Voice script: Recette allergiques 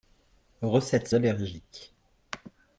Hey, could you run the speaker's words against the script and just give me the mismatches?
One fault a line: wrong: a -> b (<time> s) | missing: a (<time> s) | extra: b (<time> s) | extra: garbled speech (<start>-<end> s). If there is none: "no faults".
no faults